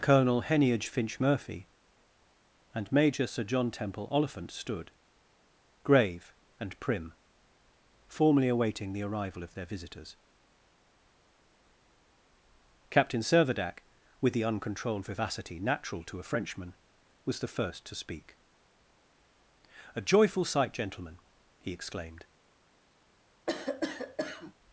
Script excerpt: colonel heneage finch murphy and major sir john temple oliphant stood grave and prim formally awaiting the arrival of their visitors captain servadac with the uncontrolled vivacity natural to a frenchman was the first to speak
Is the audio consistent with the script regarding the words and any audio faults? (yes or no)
no